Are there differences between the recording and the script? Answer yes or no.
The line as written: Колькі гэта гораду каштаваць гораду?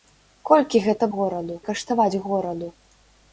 no